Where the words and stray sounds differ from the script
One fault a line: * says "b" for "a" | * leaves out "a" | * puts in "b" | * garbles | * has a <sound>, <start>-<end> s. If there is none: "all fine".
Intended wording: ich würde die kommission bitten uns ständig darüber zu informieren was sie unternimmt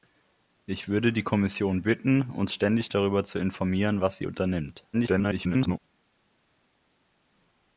* garbles